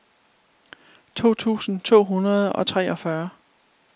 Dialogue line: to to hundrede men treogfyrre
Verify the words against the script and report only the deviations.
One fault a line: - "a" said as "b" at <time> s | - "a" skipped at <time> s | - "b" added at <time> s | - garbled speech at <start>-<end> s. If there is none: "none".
- "tusind" added at 1.4 s
- "men" said as "og" at 2.5 s